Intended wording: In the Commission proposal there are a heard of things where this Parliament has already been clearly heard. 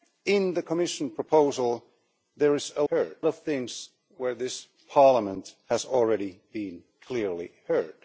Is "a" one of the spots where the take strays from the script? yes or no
no